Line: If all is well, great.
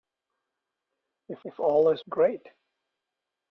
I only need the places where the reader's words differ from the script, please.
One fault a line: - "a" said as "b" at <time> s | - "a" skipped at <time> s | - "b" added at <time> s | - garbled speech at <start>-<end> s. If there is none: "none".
- "if" added at 1.4 s
- "well" skipped at 2.0 s